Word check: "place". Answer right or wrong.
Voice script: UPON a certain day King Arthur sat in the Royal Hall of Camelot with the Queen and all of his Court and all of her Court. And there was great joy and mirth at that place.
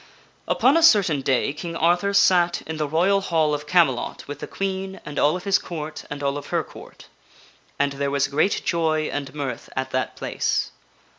right